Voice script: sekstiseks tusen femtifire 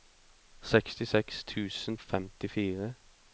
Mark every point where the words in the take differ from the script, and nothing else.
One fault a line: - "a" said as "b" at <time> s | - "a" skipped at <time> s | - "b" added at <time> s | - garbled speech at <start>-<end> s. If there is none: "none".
none